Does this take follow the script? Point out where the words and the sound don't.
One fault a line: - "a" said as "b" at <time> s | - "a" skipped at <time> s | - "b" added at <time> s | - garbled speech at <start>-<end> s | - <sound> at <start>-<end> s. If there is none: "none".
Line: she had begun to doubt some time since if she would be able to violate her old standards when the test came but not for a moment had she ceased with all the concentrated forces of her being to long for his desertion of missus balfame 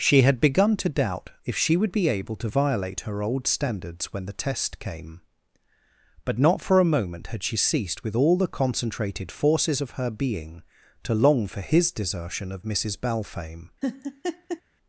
- "some time since" skipped at 1.3 s
- laugh at 13.8-14.6 s